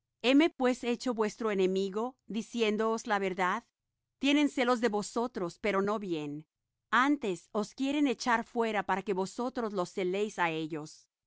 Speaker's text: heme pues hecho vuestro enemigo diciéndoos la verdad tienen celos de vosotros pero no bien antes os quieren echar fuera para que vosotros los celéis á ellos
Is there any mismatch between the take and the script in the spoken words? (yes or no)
no